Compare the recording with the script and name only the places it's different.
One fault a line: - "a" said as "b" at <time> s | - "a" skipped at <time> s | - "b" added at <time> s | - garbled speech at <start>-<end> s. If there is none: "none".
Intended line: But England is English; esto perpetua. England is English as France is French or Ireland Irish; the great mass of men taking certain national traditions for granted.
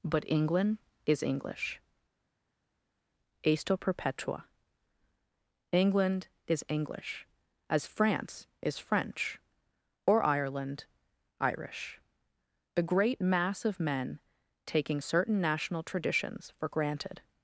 none